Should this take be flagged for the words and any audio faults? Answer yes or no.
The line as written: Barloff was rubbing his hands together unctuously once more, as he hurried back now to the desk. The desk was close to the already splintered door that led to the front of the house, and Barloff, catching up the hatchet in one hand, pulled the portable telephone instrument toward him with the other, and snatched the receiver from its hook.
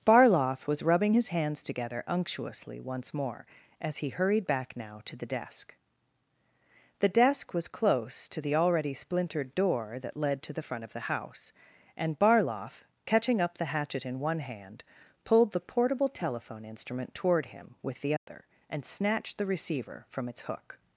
yes